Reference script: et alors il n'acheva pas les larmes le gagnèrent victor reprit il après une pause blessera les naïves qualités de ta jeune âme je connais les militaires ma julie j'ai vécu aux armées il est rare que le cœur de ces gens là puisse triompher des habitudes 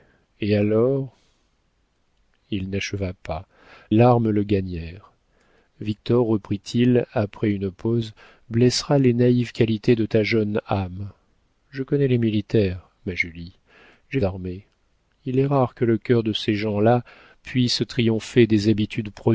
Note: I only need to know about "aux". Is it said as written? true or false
false